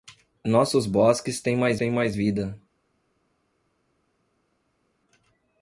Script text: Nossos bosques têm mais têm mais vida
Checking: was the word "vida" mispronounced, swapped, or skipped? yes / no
no